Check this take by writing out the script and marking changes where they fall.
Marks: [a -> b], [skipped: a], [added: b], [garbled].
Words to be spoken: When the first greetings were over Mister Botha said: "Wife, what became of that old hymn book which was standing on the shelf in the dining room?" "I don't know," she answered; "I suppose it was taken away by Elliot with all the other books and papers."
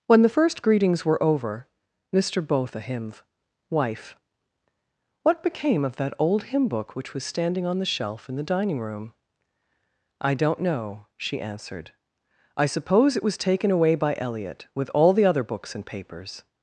When the first greetings were over Mister Botha [said: -> himv] "Wife, what became of that old hymn book which was standing on the shelf in the dining room?" "I don't know," she answered; "I suppose it was taken away by Elliot with all the other books and papers."